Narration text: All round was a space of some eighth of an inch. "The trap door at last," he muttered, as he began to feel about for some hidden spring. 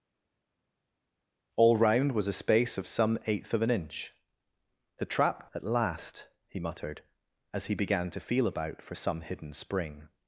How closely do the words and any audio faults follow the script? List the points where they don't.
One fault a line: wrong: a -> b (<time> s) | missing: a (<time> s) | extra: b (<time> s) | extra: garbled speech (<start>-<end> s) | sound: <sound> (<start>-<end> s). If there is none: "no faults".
missing: door (5.5 s)